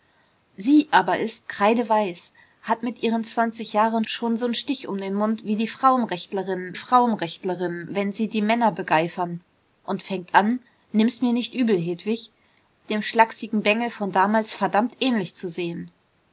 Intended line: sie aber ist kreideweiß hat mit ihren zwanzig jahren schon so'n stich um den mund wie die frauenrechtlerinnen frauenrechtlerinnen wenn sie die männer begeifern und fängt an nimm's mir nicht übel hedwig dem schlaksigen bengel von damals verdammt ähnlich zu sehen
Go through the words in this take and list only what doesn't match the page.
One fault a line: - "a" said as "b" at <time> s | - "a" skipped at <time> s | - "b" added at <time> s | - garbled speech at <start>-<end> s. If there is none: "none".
none